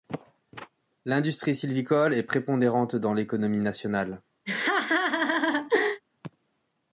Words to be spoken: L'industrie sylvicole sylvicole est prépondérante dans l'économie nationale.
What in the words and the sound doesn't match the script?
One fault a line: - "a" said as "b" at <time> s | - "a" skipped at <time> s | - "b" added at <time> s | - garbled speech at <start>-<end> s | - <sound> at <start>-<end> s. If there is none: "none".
- "sylvicole" skipped at 2.1 s
- laugh at 4.5-6.0 s